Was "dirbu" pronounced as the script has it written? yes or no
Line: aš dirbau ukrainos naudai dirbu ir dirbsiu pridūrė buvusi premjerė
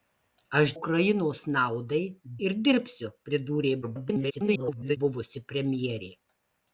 no